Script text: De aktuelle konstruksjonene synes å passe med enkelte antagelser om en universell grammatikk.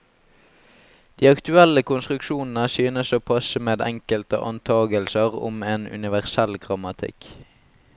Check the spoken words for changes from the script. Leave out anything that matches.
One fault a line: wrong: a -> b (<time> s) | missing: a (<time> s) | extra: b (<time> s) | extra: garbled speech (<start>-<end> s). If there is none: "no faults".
no faults